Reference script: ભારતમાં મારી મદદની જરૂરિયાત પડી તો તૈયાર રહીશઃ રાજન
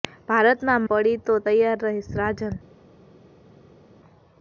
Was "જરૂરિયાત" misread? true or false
true